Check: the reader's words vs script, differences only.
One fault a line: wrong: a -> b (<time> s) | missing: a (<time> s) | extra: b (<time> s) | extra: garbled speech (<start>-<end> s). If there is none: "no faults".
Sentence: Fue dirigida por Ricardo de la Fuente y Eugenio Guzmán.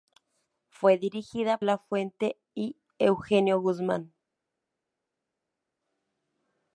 missing: por Ricardo de (1.6 s)